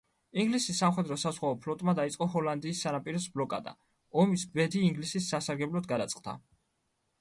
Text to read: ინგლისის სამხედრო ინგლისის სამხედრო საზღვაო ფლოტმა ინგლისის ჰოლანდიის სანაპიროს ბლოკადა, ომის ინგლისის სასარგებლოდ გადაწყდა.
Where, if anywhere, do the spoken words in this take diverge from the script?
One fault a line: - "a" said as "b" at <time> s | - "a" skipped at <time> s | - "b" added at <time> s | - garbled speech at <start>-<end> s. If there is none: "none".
- "ინგლისის სამხედრო" skipped at 1.2 s
- "ინგლისის" said as "დაიწყო" at 2.0 s
- "ბედი" added at 4.6 s